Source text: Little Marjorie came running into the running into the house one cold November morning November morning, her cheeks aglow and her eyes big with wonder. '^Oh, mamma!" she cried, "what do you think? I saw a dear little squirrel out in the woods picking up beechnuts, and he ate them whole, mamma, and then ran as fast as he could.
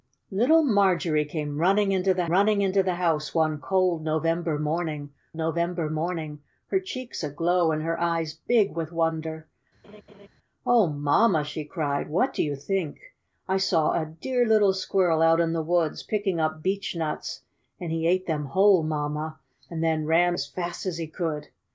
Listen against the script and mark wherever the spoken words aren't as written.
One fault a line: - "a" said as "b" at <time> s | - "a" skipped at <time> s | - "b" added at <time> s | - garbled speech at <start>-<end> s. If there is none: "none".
none